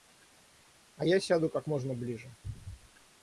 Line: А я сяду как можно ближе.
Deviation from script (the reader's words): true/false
false